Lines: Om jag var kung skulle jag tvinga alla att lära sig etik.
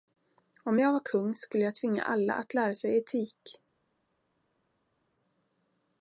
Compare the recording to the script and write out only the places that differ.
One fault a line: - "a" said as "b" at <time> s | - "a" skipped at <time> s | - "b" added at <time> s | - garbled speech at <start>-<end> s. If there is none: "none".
none